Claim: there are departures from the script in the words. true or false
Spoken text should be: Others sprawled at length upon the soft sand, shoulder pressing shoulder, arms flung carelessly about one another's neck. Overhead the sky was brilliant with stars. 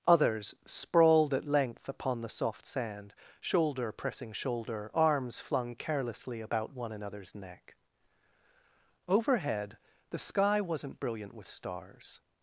true